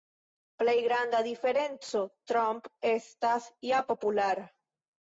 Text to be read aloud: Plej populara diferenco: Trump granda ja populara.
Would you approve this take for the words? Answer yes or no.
no